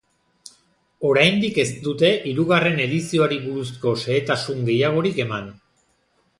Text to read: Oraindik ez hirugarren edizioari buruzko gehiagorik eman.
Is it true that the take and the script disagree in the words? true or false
true